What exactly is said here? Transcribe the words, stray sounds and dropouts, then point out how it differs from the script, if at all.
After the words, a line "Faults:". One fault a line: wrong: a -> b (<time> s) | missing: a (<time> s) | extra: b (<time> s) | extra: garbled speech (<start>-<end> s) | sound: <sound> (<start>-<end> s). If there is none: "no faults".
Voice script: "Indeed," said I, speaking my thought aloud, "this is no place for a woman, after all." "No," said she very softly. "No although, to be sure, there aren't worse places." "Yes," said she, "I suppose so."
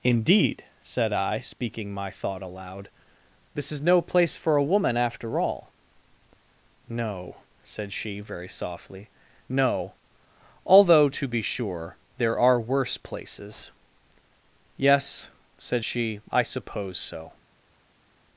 "Indeed," said I, speaking my thought aloud, "this is no place for a woman, after all." "No," said she very softly. "No although, to be sure, there are worse places." "Yes," said she, "I suppose so."
Faults:
wrong: aren't -> are (12.4 s)